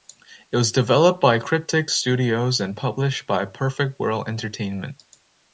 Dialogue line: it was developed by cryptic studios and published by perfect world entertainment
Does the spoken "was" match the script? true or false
true